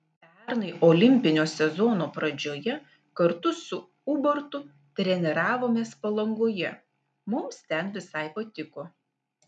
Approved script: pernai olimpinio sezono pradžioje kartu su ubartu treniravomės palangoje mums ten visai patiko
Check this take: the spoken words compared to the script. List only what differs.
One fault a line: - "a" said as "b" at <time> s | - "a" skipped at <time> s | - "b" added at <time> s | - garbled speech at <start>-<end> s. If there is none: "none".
none